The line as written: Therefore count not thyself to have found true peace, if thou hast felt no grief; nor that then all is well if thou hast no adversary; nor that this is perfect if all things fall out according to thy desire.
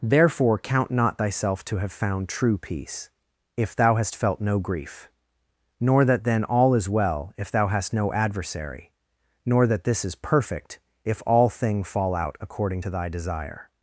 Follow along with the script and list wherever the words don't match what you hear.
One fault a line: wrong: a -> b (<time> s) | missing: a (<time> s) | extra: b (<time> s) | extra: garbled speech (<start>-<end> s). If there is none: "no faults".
wrong: things -> thing (11.5 s)